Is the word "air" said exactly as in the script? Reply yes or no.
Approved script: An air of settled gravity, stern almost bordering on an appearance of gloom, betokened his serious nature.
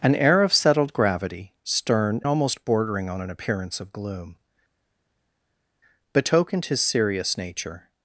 yes